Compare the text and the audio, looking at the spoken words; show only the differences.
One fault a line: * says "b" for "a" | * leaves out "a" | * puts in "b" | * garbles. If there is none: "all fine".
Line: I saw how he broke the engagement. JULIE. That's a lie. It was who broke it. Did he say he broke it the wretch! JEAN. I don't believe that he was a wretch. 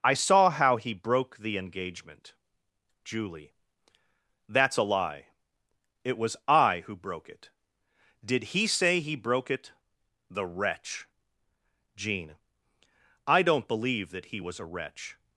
* puts in "I"